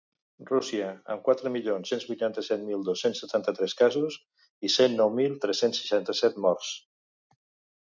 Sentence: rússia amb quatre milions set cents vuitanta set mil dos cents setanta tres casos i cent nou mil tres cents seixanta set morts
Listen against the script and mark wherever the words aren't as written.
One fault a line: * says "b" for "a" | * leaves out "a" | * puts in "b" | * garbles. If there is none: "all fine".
* leaves out "set"